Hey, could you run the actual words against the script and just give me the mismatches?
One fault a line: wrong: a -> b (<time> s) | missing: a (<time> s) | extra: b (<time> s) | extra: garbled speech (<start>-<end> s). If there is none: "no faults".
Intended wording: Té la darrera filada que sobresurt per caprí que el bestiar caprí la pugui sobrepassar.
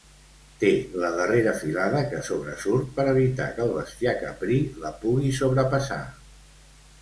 wrong: caprí -> evitar (3.2 s)